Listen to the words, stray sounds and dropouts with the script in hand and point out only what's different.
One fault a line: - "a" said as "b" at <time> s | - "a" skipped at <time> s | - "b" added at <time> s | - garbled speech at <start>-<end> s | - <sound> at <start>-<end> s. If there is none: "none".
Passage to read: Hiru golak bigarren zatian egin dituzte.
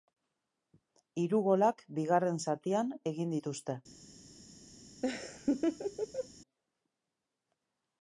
- laugh at 5.0-6.3 s